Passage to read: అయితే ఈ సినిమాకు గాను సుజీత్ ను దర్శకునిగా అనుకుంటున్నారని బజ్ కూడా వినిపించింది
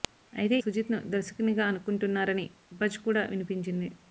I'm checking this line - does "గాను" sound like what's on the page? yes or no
no